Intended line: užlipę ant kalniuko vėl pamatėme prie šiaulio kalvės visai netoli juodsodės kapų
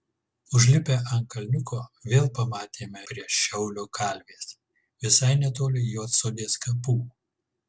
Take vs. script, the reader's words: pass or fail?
pass